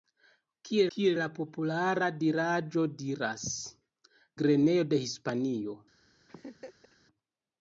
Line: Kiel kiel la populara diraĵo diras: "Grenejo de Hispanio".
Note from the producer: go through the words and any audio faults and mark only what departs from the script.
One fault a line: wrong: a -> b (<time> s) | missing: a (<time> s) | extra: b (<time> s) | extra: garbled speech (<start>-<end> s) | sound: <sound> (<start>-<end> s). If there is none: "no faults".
sound: laugh (6.3-7.0 s)